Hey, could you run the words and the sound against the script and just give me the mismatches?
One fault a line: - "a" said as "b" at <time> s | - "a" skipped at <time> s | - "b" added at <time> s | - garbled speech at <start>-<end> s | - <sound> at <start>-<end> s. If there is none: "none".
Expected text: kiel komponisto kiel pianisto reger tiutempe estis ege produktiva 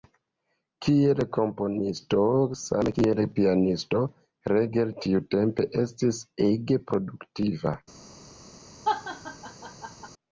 - "same" added at 2.6 s
- laugh at 8.8-10.1 s